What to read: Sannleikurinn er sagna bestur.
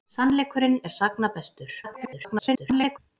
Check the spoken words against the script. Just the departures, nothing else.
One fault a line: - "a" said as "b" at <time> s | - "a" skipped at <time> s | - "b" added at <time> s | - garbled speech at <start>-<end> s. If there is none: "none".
- garbled speech at 1.8-3.0 s